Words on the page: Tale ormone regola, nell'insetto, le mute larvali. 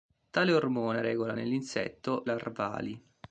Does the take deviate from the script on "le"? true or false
true